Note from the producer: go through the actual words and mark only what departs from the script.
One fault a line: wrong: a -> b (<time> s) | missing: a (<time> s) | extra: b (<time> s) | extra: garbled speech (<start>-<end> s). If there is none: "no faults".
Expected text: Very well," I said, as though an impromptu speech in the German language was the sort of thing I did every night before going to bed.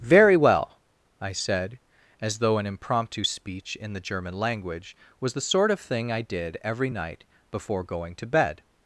no faults